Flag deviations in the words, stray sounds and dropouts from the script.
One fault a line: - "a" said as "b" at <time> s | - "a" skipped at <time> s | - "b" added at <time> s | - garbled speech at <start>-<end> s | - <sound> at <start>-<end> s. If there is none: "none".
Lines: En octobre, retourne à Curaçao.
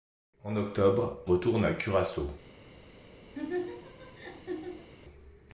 - laugh at 3.3-4.9 s